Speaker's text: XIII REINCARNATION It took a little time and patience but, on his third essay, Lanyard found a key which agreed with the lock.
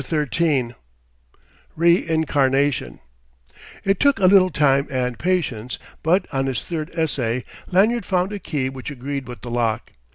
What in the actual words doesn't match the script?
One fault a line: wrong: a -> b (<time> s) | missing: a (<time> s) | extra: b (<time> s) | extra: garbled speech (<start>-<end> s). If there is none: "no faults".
no faults